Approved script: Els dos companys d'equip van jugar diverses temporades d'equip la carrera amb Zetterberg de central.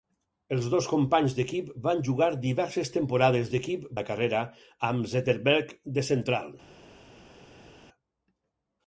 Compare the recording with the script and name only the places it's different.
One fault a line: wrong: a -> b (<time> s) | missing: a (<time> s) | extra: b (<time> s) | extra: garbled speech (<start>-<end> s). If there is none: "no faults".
no faults